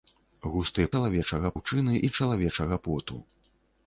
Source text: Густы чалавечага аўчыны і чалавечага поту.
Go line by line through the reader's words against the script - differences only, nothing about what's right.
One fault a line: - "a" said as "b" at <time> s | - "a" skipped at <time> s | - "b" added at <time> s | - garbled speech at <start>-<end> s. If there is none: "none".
none